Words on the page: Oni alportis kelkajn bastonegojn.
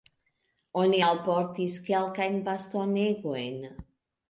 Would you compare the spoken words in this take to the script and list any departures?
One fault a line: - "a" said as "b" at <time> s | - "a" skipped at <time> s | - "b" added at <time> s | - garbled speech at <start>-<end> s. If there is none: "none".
none